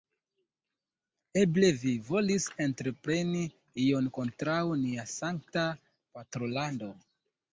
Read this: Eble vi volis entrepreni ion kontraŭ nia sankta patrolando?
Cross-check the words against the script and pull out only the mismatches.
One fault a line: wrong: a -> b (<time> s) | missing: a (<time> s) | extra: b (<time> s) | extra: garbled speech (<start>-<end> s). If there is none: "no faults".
no faults